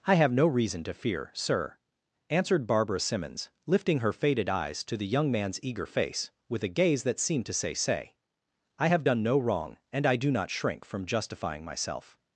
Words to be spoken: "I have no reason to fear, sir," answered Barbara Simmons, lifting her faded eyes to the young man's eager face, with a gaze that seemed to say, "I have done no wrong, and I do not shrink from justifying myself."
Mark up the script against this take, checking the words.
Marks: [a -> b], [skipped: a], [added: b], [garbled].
"I have no reason to fear, sir," answered Barbara Simmons, lifting her faded eyes to the young man's eager face, with a gaze that seemed to say, [added: say] "I have done no wrong, and I do not shrink from justifying myself."